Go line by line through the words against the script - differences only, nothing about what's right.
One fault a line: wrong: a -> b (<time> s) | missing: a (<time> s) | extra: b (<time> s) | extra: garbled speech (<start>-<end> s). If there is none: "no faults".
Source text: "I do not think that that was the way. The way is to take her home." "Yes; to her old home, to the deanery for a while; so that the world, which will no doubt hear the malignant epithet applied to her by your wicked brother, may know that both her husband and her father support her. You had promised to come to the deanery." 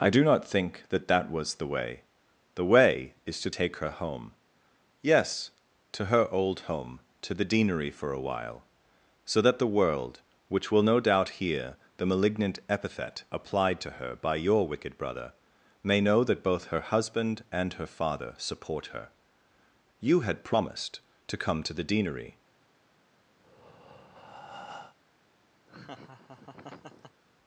no faults